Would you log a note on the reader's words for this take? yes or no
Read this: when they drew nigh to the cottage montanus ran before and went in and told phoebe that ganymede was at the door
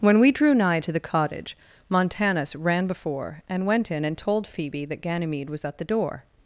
yes